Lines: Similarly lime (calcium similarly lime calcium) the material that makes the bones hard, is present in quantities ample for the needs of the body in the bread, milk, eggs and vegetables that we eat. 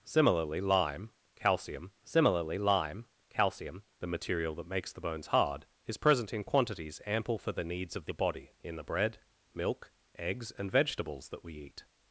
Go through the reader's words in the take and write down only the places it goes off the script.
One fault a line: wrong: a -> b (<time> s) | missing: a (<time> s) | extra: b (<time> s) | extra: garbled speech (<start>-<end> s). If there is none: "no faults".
no faults